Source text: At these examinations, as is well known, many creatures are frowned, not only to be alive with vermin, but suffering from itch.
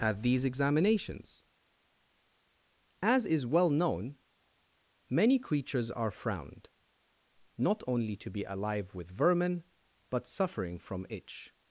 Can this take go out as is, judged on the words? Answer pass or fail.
pass